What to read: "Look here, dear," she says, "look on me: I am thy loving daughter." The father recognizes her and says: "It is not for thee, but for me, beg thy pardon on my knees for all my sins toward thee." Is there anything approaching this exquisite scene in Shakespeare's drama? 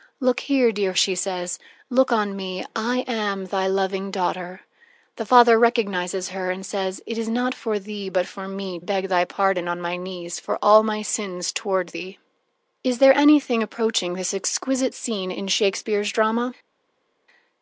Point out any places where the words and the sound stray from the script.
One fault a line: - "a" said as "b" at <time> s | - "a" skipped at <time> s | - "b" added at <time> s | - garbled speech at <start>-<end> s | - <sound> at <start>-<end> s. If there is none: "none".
none